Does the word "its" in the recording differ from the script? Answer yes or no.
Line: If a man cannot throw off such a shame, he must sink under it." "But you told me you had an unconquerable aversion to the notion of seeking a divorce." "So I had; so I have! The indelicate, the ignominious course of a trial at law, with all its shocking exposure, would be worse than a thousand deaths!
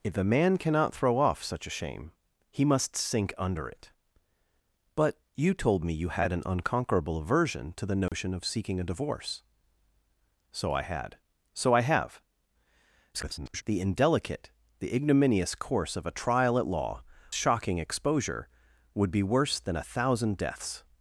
yes